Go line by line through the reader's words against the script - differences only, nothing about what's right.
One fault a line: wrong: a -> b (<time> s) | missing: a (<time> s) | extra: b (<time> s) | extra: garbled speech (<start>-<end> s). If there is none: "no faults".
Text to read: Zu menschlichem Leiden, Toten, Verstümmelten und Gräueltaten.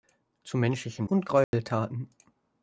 missing: Leiden Toten Verstümmelten (1.1 s)